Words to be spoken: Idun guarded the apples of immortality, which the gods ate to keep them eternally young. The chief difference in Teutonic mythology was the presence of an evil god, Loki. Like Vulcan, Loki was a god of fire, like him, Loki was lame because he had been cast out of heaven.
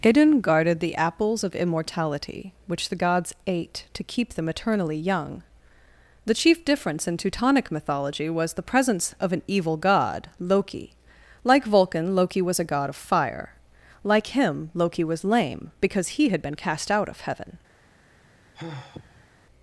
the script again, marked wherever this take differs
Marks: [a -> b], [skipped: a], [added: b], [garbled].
Idun guarded the apples of immortality, which the gods ate to keep them eternally young. The chief difference in Teutonic mythology was the presence of an evil god, Loki. Like Vulcan, Loki was a god of fire, like him, Loki was lame because he had been cast out of heaven.